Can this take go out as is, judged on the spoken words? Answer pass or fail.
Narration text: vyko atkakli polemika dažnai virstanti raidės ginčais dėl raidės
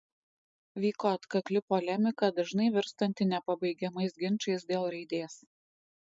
fail